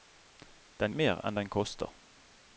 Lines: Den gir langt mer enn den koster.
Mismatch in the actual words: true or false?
true